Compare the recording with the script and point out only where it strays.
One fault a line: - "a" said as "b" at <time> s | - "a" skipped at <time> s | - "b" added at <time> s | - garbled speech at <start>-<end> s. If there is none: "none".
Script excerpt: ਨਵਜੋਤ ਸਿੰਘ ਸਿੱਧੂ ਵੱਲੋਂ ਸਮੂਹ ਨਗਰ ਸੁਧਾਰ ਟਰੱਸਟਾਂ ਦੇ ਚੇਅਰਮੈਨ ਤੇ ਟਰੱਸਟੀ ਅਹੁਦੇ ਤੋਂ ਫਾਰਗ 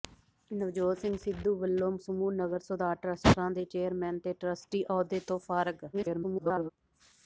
- garbled speech at 5.9-6.7 s